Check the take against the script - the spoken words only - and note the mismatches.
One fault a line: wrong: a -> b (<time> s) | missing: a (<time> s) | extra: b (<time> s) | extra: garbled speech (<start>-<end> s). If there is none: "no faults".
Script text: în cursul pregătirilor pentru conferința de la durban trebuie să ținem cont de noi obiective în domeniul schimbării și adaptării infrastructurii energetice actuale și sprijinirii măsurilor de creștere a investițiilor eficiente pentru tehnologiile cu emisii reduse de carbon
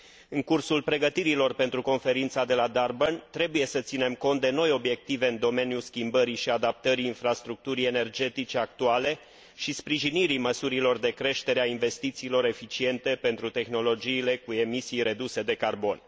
no faults